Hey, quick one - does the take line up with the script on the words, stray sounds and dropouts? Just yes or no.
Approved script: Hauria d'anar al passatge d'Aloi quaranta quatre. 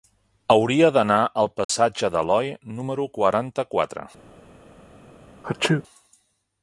no